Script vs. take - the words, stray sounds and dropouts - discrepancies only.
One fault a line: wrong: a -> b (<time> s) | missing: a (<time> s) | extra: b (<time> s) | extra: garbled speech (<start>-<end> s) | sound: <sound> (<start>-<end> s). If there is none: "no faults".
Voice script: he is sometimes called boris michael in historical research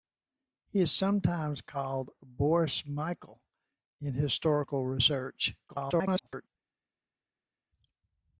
extra: garbled speech (5.7-6.5 s)